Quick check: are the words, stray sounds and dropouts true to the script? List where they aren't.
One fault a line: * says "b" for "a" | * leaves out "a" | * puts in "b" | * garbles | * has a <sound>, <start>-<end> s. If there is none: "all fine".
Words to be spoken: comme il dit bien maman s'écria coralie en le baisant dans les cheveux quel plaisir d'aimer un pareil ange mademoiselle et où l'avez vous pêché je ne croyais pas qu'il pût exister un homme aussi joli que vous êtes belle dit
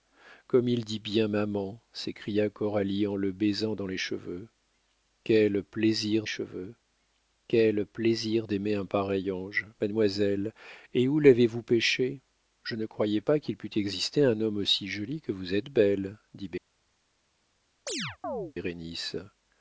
* puts in "cheveux quel plaisir"
* has a chirp, 17.9-18.5 s